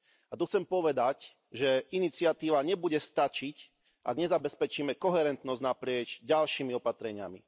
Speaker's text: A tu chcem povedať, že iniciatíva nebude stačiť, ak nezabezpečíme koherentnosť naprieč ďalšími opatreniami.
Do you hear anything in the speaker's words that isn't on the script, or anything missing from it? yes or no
no